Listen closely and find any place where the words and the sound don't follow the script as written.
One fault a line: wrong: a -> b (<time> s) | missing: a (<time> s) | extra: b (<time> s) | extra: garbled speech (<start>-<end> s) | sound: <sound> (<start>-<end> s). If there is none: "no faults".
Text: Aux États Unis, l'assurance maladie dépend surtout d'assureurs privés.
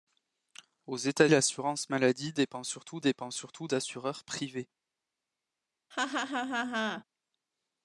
missing: Unis (1.3 s)
extra: dépend surtout (3.0 s)
sound: laugh (5.9-7.0 s)